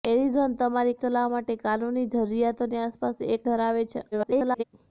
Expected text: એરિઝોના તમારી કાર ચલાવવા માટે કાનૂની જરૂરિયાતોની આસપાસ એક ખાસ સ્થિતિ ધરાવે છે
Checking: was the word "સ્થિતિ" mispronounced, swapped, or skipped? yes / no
yes